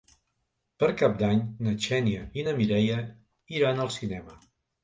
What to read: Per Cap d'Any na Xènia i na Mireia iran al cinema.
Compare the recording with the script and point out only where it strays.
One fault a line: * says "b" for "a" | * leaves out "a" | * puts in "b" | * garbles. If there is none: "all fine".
all fine